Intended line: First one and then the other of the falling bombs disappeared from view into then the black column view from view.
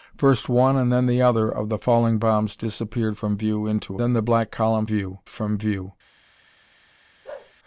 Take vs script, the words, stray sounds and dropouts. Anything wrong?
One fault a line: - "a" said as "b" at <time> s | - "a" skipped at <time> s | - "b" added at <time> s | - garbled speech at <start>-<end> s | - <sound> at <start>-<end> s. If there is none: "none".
- bark at 7.2-7.5 s